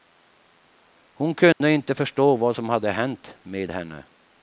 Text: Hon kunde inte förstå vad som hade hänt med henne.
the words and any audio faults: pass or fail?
fail